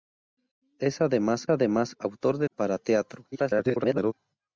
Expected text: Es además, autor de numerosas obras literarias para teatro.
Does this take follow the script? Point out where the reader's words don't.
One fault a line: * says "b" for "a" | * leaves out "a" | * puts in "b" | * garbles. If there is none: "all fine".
* puts in "además"
* leaves out "numerosas obras literarias"
* garbles